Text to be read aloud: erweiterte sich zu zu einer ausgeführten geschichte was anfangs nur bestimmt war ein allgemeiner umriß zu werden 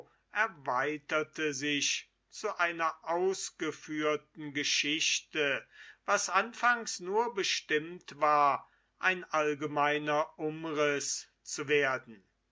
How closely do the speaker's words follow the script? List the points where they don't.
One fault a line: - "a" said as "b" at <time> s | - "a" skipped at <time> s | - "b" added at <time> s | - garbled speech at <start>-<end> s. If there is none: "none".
- "zu" skipped at 2.6 s